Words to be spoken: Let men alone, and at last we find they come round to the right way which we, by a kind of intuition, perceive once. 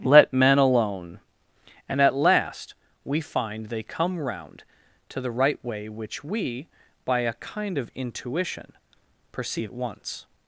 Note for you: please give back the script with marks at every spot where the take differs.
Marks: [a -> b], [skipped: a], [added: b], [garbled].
Let men alone, and at last we find they come round to the right way which we, by a kind of intuition, perceive once.